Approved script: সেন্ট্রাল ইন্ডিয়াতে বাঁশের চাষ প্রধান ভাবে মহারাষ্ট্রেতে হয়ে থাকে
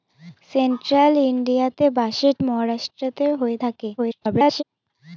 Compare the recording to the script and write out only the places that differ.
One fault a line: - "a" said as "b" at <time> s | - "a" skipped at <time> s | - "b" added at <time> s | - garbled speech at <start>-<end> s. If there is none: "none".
- "চাষ প্রধান ভাবে" skipped at 2.4 s
- garbled speech at 4.0-4.6 s